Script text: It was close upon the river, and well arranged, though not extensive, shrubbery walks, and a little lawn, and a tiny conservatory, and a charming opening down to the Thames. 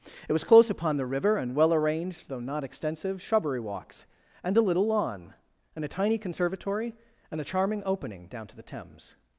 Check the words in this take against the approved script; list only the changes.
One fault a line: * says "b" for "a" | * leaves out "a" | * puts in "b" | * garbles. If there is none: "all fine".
all fine